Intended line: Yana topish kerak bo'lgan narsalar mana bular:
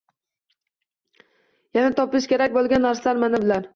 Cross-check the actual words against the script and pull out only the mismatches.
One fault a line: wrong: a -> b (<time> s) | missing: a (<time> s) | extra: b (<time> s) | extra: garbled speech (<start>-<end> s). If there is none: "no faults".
no faults